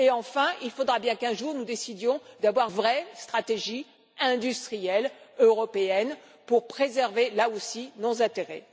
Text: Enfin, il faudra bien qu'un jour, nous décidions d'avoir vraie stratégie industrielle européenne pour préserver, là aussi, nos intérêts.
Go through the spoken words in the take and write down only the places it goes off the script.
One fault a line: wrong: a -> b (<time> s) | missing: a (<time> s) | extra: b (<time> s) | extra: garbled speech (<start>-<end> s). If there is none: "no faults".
no faults